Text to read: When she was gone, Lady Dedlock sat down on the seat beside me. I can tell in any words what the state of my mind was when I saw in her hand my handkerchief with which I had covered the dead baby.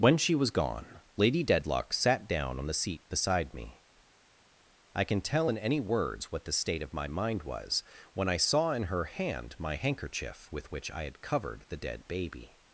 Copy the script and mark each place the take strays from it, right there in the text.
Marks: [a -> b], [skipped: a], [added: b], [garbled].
When she was gone, Lady Dedlock sat down on the seat beside me. I can tell in any words what the state of my mind was when I saw in her hand my handkerchief with which I had covered the dead baby.